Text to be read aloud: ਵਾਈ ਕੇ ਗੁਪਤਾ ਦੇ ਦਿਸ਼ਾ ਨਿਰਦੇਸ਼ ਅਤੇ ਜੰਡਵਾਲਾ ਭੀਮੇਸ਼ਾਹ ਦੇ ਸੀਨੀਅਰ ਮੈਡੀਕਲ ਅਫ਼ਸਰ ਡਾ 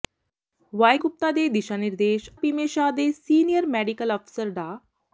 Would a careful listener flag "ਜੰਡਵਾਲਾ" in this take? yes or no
yes